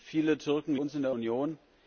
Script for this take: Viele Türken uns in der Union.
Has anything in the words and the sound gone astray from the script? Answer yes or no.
no